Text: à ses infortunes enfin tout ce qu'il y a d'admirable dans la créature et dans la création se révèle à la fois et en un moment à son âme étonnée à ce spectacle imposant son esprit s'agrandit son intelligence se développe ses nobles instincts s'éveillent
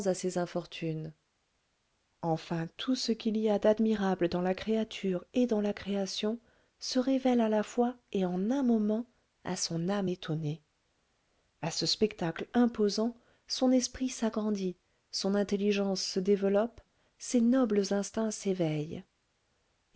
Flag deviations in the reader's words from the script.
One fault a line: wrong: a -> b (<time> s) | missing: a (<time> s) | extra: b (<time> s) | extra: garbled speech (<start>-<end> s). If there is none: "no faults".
no faults